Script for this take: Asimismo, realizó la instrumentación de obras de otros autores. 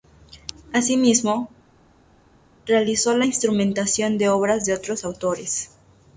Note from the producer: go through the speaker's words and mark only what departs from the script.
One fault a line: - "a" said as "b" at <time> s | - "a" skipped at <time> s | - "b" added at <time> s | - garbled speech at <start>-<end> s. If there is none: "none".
none